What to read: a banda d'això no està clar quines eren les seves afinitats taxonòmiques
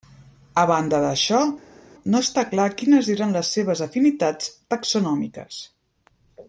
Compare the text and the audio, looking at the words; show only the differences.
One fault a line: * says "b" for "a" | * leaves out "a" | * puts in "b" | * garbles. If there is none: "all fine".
all fine